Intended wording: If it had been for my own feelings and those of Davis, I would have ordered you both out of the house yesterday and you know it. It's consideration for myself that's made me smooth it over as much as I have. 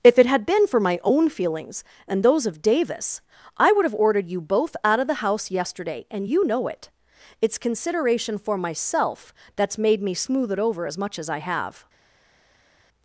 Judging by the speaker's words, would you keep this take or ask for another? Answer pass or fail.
pass